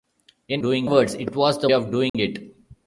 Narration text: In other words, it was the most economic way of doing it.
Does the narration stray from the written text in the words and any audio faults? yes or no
yes